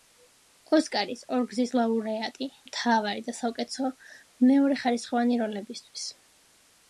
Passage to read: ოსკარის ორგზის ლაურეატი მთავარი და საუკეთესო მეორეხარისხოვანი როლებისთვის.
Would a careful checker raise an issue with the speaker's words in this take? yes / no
no